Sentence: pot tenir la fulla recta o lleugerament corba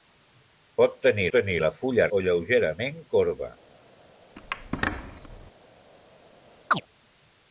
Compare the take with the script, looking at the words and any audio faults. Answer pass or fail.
fail